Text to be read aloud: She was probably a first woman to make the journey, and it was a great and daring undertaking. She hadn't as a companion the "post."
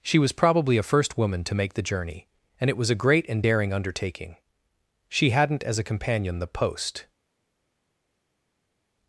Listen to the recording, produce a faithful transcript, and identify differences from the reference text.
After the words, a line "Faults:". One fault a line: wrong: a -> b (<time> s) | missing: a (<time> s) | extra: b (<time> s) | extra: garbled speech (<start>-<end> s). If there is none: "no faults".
She was probably a first woman to make the journey, and it was a great and daring undertaking. She hadn't as a companion the "post."
Faults:
no faults